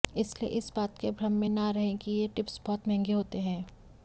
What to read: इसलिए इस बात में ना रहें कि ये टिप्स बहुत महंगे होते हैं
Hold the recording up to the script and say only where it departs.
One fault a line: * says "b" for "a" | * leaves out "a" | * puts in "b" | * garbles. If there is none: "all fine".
* puts in "के भ्रम"